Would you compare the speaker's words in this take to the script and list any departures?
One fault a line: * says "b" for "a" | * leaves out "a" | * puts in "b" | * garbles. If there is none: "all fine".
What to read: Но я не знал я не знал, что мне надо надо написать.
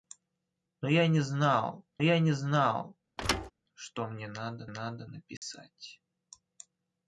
all fine